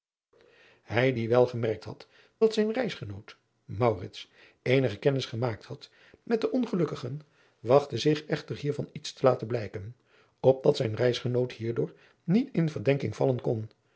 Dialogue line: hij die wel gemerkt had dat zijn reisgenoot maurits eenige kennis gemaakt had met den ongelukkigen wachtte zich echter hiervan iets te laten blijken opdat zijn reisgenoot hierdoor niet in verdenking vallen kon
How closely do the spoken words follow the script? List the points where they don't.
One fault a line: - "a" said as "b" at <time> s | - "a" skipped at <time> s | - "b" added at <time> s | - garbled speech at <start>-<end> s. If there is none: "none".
none